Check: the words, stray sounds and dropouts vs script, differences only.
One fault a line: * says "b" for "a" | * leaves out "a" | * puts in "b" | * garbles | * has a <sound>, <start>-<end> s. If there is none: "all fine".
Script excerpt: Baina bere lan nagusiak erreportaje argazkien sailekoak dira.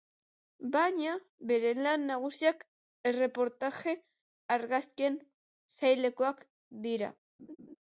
* has a laugh, 7.4-7.8 s